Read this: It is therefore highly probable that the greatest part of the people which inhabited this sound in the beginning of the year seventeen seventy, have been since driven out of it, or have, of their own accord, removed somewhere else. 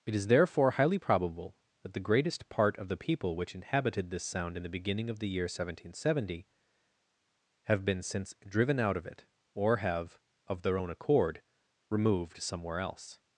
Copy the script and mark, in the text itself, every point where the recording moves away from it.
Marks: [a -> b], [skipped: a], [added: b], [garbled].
It is therefore highly probable that the greatest part of the people which inhabited this sound in the beginning of the year seventeen seventy, have been since driven out of it, or have, of their own accord, removed somewhere else.